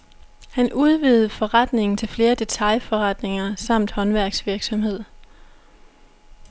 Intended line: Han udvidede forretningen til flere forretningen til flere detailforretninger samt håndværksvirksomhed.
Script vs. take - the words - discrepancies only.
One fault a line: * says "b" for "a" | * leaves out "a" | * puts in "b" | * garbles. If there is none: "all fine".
* leaves out "forretningen til flere"